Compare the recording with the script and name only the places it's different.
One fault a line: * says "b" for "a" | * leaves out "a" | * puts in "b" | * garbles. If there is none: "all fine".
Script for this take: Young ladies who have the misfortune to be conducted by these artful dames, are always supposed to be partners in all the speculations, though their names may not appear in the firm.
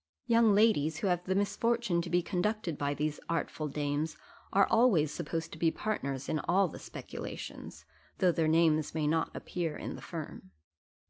all fine